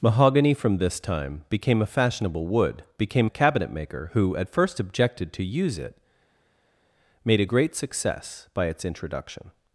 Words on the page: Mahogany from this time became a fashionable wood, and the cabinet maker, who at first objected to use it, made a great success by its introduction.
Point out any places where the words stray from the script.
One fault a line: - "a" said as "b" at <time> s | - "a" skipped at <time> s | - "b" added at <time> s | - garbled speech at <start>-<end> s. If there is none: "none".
- "and" said as "became" at 3.0 s